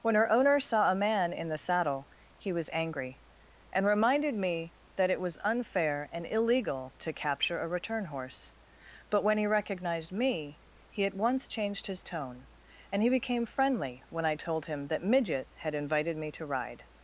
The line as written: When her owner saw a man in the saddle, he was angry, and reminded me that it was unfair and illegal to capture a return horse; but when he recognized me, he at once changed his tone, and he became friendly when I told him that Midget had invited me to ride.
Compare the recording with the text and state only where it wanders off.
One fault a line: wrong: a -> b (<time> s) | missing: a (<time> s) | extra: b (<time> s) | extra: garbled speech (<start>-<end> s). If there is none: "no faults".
no faults